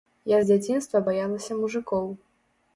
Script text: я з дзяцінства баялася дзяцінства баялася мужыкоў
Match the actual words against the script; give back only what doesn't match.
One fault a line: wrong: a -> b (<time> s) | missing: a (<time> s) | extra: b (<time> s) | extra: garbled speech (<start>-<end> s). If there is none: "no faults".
missing: дзяцінства баялася (1.6 s)